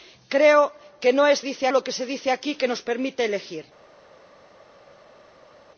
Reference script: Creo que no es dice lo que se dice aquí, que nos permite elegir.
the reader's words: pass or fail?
pass